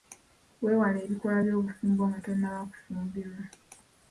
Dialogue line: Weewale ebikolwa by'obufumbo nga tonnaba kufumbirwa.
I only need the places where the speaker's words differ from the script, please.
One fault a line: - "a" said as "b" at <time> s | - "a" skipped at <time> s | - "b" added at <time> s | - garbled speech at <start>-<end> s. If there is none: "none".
none